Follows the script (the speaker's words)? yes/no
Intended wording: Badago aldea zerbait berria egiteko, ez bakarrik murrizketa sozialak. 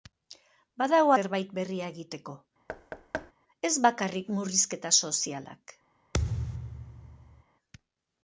no